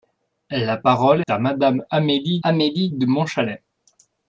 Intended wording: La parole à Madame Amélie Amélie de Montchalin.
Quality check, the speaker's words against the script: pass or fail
pass